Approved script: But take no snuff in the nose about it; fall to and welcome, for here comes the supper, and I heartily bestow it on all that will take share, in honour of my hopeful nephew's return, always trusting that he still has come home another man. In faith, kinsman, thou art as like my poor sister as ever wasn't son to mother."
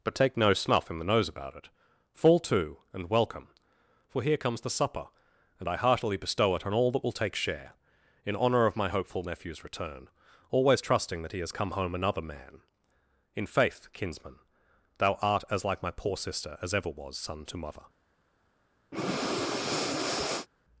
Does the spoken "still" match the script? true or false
false